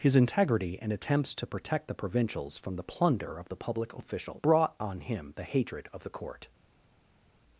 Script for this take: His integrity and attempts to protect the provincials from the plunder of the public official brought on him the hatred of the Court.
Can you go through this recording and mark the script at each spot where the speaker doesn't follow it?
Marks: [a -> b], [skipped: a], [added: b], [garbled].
His integrity and attempts to protect the provincials from the plunder of the public official brought on him the hatred of the Court.